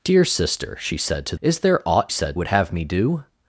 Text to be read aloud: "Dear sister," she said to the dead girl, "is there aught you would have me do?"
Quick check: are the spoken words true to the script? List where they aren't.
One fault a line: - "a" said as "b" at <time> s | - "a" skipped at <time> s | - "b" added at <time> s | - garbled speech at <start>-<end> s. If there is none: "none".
- "the dead girl" skipped at 1.4 s
- "you" said as "said" at 2.1 s